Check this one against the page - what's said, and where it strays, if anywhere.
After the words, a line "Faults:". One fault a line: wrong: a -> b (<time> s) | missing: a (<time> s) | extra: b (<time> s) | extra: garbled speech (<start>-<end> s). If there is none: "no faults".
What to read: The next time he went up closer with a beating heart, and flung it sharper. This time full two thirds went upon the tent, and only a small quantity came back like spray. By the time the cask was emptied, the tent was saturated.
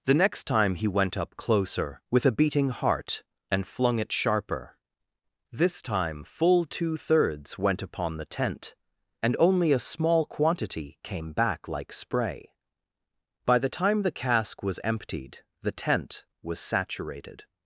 The next time he went up closer with a beating heart, and flung it sharper. This time full two thirds went upon the tent, and only a small quantity came back like spray. By the time the cask was emptied, the tent was saturated.
Faults:
no faults